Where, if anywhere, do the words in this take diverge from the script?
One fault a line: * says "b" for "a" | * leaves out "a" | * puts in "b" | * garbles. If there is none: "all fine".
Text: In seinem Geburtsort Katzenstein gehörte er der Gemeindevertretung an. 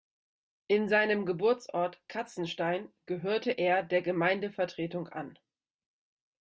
all fine